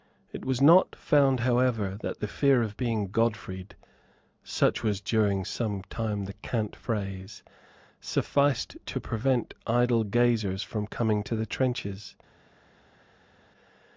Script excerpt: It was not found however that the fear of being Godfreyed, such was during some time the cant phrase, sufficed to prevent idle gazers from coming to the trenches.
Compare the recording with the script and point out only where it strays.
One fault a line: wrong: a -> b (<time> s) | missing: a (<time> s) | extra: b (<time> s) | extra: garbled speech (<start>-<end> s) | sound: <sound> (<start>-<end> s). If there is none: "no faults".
no faults